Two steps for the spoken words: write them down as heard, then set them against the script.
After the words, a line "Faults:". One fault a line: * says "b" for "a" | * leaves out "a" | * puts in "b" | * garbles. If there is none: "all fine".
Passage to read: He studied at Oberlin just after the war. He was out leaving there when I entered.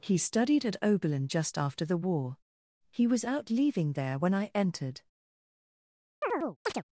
He studied at Oberlin just after the war. He was out leaving there when I entered.
Faults:
all fine